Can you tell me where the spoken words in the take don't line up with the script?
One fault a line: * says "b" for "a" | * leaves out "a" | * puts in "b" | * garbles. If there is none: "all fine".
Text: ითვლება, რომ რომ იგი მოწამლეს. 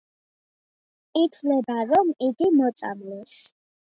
* leaves out "რომ"